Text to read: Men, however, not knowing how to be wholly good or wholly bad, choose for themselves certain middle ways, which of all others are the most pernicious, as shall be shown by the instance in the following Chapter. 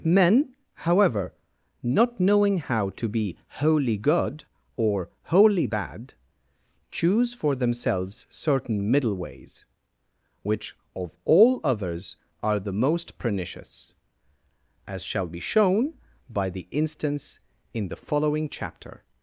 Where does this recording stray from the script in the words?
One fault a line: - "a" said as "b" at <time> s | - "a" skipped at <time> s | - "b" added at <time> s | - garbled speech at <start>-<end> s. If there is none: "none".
none